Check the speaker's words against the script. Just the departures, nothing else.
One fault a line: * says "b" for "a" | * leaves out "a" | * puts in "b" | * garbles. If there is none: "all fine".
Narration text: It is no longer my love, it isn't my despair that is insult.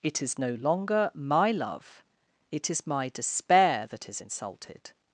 * says "is" for "isn't"
* says "insulted" for "insult"